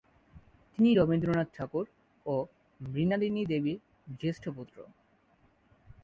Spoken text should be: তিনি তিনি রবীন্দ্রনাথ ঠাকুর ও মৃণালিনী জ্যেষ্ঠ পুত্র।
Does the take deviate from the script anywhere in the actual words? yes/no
yes